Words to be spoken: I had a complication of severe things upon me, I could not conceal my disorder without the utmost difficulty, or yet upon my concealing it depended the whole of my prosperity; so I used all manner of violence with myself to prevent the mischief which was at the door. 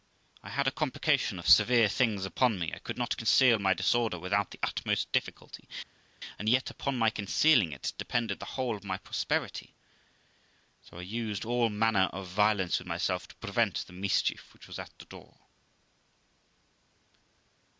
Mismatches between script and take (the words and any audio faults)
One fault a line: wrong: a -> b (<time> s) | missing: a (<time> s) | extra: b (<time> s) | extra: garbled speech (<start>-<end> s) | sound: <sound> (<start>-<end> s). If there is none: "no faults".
wrong: or -> and (6.4 s)